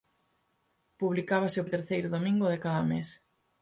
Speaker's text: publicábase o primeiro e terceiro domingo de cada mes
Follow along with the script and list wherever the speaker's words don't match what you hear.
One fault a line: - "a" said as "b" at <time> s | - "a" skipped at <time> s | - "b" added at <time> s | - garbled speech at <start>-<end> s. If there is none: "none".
- "primeiro" skipped at 1.7 s